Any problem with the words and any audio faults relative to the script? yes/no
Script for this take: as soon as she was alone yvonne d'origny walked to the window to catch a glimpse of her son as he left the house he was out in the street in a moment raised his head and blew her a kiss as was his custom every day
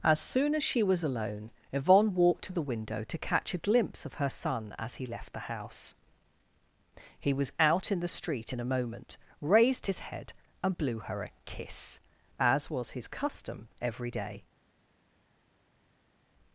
yes